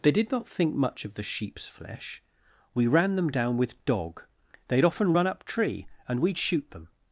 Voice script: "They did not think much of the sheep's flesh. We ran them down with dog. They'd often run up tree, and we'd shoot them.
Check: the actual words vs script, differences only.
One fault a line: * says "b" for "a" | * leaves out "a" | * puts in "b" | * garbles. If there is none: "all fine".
all fine